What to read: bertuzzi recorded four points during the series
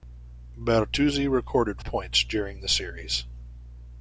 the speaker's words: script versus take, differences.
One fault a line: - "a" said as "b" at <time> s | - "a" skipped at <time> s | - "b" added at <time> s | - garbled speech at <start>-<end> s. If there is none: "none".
- "four" skipped at 1.8 s